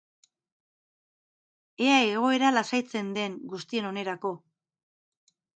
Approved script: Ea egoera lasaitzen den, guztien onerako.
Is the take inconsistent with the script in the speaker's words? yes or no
no